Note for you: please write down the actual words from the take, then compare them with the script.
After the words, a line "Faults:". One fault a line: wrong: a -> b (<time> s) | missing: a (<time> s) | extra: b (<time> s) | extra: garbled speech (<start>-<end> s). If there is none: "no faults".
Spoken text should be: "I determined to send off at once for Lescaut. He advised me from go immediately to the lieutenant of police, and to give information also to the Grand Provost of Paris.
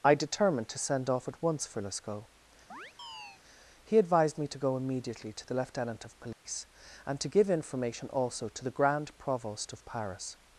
"I determined to send off at once for Lescaut. He advised me to go immediately to the lieutenant of police, and to give information also to the Grand Provost of Paris.
Faults:
wrong: from -> to (4.5 s)